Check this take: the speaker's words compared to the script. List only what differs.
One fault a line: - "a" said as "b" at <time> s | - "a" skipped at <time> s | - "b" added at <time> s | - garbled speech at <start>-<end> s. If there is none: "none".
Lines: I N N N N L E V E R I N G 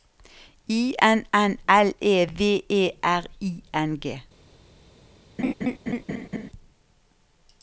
- "N N" skipped at 1.6 s